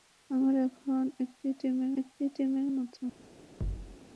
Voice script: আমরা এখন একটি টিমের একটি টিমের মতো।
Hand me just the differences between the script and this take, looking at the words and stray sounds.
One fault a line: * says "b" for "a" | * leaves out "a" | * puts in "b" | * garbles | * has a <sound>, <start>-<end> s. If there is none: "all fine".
* has a thud, 3.6-4.0 s